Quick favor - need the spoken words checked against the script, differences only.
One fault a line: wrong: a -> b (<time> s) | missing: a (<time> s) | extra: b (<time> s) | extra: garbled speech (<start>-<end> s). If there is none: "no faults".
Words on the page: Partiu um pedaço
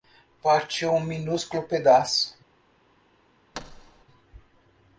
extra: minúsculo (1.0 s)